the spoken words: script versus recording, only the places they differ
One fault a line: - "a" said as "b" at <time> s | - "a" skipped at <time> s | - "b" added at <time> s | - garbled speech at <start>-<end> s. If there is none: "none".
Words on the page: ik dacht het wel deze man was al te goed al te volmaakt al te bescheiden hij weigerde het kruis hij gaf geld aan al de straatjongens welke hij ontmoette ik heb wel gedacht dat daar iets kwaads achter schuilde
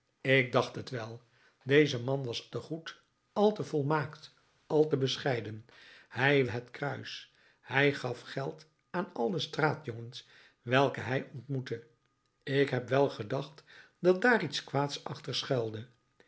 - "al" skipped at 2.5 s
- "weigerde" skipped at 6.5 s